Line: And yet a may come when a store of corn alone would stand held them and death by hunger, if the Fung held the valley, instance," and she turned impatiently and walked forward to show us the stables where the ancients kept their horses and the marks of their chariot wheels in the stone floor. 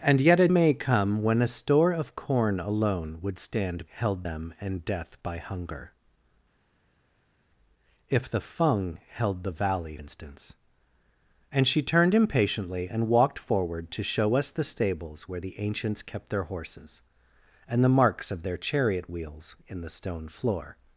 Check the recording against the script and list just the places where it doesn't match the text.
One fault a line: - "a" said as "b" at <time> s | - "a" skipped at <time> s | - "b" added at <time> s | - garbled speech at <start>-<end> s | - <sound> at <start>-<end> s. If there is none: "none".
none